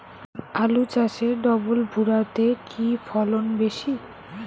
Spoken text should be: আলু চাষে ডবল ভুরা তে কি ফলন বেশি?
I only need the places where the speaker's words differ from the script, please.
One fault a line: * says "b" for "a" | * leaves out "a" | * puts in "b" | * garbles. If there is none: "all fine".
all fine